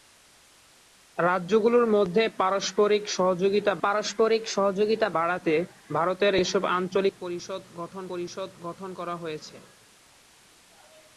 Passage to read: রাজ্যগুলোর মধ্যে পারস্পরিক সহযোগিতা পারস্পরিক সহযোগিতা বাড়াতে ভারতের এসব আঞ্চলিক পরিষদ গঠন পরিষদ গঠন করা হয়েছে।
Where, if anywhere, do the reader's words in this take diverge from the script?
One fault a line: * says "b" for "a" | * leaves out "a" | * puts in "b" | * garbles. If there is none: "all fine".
all fine